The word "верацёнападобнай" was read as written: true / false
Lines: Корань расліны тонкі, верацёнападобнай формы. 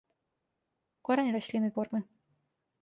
false